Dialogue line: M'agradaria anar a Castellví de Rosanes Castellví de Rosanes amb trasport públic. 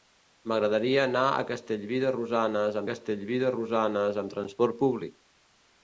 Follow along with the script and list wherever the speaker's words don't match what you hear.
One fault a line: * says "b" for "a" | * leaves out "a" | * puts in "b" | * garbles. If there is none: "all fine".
all fine